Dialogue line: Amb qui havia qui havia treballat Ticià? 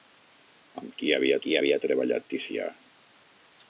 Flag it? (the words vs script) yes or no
no